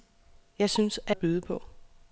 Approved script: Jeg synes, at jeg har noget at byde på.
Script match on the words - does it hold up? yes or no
no